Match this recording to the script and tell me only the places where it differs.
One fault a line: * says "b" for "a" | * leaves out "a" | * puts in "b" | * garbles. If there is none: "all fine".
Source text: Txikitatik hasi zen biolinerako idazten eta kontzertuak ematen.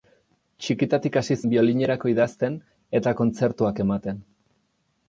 * leaves out "zen"